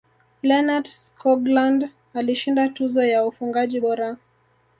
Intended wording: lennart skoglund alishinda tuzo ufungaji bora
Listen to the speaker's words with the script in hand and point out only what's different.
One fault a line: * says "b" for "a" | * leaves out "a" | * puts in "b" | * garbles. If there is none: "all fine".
* puts in "ya"